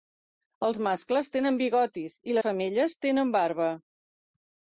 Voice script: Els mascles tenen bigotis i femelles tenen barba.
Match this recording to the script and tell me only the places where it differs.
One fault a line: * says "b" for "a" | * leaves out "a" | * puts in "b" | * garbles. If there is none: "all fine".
all fine